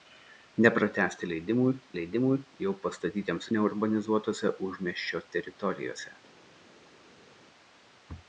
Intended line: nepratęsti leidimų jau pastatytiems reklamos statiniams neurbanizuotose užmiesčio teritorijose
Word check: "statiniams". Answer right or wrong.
wrong